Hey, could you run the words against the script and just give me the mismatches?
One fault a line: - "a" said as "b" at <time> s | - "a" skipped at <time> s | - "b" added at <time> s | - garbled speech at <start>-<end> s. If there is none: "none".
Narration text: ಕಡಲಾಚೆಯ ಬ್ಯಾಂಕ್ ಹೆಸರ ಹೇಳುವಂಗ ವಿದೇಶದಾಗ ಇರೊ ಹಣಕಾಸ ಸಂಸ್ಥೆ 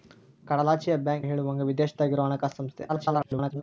- "ಹೆಸರ" skipped at 1.3 s
- garbled speech at 2.9-3.6 s